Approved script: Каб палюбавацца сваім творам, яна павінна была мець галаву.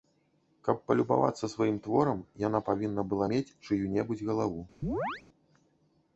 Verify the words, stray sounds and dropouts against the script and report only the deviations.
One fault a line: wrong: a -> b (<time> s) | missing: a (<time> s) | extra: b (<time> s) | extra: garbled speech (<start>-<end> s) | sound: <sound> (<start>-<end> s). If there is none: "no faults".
extra: чыю небудзь (3.7 s)
sound: chirp (4.8-5.2 s)